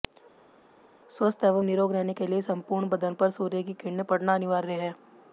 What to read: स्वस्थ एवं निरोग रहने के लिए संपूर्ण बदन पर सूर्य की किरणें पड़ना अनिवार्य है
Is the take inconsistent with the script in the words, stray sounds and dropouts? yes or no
no